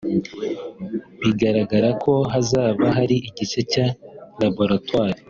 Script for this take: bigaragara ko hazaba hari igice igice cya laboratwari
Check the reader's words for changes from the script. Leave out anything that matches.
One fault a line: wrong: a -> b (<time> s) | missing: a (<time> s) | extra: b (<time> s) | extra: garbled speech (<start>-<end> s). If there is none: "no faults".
missing: igice (3.6 s)